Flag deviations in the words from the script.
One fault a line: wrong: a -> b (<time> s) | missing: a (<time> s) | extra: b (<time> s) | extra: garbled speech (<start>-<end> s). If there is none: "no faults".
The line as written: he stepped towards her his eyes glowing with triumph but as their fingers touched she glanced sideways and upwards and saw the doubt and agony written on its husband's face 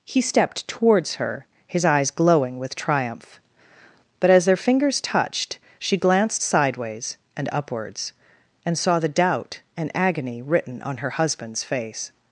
wrong: its -> her (11.0 s)